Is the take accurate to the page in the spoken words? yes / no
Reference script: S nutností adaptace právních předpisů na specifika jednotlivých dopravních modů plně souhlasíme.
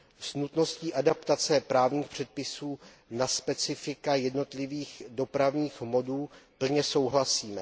yes